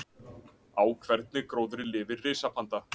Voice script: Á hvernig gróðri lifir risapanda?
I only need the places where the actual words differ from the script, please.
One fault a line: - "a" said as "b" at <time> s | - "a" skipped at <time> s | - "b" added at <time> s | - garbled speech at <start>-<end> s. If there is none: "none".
none